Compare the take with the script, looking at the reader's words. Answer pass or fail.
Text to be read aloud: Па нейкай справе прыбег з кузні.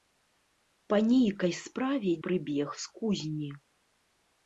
pass